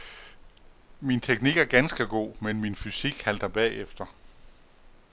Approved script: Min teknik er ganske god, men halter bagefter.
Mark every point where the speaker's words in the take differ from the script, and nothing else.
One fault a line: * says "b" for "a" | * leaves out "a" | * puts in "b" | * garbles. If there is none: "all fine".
* puts in "min fysik"